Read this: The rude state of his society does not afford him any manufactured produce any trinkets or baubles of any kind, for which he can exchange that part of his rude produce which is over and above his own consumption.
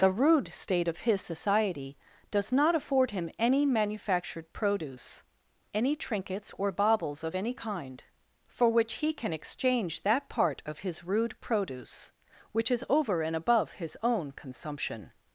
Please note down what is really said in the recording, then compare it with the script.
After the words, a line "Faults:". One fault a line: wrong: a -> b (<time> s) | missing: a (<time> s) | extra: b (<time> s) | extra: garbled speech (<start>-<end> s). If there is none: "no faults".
The rude state of his society does not afford him any manufactured produce any trinkets or baubles of any kind, for which he can exchange that part of his rude produce which is over and above his own consumption.
Faults:
no faults